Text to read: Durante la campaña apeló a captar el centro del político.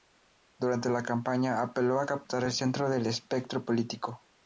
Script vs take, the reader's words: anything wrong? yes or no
yes